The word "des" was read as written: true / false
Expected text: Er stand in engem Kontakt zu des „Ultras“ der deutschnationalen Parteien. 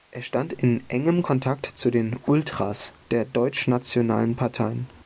false